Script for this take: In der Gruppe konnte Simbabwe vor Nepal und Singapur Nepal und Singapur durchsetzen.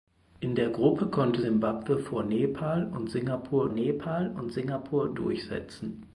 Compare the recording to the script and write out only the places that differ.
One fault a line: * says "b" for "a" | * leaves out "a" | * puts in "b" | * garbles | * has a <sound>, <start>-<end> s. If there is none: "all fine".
all fine